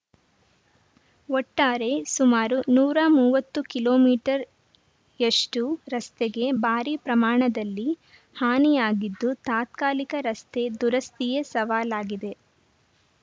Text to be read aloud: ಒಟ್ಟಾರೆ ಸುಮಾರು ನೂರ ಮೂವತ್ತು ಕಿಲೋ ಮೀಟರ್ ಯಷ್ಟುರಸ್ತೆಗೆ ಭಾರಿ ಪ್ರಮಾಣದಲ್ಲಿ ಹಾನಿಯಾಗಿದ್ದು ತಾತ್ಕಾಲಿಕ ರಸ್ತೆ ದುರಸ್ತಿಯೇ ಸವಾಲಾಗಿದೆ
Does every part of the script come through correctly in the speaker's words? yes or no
yes